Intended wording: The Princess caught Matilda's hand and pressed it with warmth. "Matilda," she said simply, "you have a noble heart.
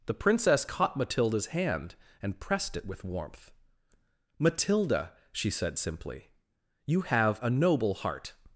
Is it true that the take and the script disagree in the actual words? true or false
false